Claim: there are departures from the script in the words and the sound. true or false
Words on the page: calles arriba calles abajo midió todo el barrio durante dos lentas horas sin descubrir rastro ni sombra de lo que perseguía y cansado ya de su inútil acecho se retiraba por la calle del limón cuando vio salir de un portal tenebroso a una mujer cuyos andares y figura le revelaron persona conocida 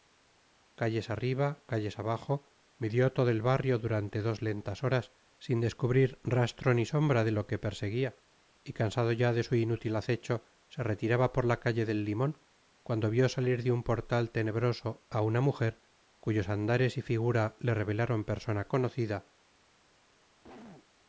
true